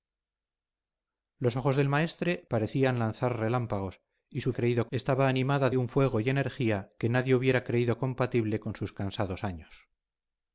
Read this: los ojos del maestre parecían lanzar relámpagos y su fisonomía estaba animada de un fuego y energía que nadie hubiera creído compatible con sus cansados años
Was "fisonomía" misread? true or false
true